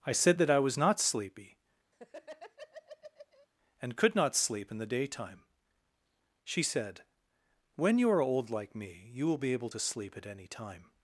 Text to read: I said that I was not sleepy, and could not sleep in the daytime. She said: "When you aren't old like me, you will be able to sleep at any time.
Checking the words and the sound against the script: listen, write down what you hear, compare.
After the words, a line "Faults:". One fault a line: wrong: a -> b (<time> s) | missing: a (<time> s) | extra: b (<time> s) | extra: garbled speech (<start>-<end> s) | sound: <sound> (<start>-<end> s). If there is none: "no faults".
I said that I was not sleepy, and could not sleep in the daytime. She said: "When you are old like me, you will be able to sleep at any time.
Faults:
sound: laugh (1.9-3.5 s)
wrong: aren't -> are (8.1 s)